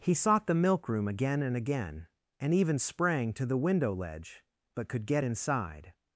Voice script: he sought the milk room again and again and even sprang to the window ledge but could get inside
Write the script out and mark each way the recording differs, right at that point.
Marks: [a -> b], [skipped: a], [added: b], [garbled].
he sought the milk room again and again and even sprang to the window ledge but could get inside